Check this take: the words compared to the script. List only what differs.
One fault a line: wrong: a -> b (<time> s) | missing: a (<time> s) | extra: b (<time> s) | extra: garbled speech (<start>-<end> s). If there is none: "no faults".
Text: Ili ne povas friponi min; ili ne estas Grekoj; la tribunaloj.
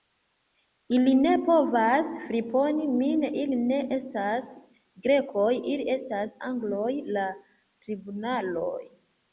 extra: ili estas Angloj (5.7 s)